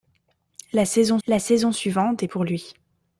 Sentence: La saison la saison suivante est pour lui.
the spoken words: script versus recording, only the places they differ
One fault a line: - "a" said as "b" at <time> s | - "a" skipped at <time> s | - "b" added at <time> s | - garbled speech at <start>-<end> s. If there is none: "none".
none